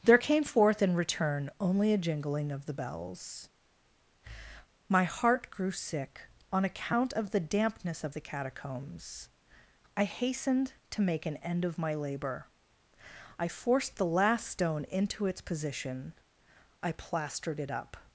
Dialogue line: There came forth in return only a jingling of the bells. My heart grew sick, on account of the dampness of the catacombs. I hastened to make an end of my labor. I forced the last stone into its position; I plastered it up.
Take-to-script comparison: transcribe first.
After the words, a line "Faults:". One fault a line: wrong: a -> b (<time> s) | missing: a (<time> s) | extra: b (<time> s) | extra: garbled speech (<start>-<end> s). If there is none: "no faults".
There came forth in return only a jingling of the bells. My heart grew sick, on account of the dampness of the catacombs. I hastened to make an end of my labor. I forced the last stone into its position; I plastered it up.
Faults:
no faults